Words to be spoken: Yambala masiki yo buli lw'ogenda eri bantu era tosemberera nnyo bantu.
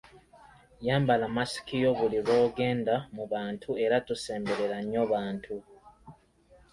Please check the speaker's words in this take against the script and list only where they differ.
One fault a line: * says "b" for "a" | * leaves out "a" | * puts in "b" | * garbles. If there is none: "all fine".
* says "mu" for "eri"